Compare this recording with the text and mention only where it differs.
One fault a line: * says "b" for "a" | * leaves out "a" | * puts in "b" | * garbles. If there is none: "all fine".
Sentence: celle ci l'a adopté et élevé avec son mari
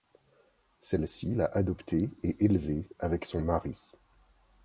all fine